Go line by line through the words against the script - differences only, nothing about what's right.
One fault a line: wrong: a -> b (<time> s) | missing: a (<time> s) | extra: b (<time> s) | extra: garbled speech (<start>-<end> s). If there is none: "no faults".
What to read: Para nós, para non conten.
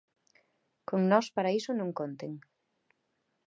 wrong: Para -> Con (0.9 s)
extra: iso (1.6 s)